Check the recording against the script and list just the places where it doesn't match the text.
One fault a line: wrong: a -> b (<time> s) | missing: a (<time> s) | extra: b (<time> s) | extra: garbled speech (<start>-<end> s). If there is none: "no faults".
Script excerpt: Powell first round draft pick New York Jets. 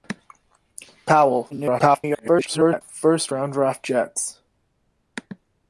extra: garbled speech (1.5-2.8 s)
missing: pick New York (3.8 s)